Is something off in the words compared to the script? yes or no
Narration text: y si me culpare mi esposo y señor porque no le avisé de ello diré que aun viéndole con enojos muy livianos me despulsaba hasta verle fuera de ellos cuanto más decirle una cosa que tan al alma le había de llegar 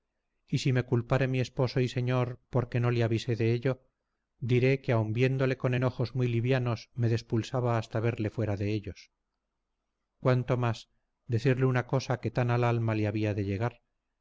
no